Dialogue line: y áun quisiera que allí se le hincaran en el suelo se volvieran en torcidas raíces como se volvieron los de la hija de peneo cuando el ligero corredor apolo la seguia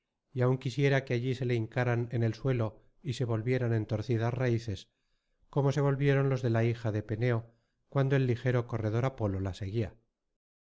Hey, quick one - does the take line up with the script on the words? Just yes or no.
no